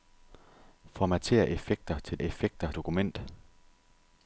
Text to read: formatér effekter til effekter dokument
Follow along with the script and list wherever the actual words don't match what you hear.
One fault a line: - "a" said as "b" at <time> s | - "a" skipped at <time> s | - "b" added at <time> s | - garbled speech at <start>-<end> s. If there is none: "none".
none